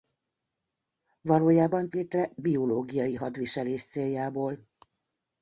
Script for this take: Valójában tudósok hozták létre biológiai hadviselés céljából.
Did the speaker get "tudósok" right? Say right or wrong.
wrong